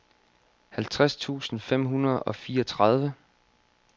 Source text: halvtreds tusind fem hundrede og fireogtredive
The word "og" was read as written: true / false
true